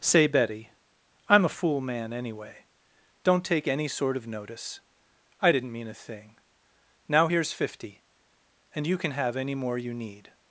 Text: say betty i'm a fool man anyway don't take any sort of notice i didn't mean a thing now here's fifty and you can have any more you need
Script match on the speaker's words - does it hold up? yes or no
yes